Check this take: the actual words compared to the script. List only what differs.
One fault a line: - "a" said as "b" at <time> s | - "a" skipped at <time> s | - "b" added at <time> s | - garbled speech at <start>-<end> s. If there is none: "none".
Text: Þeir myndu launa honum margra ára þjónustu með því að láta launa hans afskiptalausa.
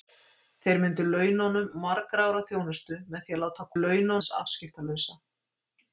none